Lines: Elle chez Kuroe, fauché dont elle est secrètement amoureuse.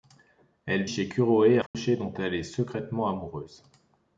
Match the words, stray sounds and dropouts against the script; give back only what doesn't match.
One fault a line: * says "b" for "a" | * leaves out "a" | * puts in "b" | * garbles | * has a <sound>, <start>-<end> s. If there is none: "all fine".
* has a dropout, 1.7-1.7 s